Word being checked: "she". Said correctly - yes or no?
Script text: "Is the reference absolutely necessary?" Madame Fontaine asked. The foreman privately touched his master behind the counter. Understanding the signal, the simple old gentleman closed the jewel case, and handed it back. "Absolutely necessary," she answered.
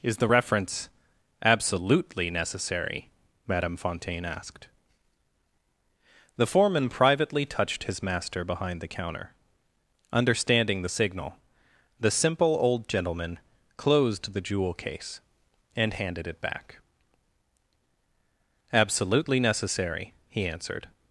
no